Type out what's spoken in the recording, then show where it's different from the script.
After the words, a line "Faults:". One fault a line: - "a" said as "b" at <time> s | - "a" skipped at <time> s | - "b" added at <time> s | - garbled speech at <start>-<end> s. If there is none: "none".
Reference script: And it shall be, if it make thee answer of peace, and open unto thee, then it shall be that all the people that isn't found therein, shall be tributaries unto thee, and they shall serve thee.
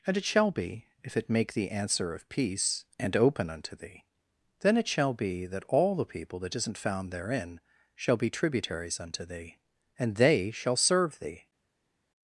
And it shall be, if it make thee answer of peace, and open unto thee, then it shall be that all the people that isn't found therein, shall be tributaries unto thee, and they shall serve thee.
Faults:
none